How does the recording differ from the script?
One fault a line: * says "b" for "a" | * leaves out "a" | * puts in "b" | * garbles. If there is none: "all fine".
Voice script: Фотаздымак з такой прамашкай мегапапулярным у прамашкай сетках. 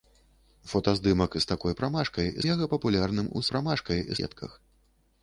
all fine